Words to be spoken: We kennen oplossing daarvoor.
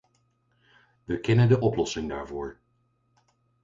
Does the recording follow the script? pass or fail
fail